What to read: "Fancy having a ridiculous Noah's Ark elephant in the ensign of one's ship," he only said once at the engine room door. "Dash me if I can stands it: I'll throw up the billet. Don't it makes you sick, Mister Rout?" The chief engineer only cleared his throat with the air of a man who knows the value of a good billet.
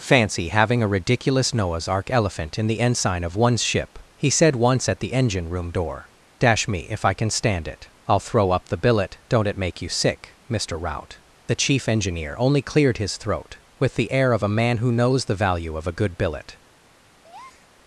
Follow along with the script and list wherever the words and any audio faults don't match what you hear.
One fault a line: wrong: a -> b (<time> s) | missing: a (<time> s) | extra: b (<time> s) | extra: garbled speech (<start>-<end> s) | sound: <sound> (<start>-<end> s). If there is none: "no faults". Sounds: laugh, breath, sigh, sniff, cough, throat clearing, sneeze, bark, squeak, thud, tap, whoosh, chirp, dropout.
missing: only (4.3 s)
wrong: stands -> stand (7.3 s)
wrong: makes -> make (9.6 s)
sound: breath (17.2-17.7 s)